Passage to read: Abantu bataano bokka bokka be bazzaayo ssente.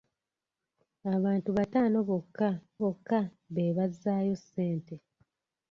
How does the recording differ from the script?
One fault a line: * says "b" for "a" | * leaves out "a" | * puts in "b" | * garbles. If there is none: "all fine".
all fine